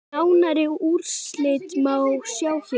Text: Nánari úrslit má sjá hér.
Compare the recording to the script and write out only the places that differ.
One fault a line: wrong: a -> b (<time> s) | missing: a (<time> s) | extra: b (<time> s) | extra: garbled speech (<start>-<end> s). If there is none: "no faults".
no faults